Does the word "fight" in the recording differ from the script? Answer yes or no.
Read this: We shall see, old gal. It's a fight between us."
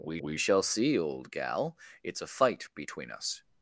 no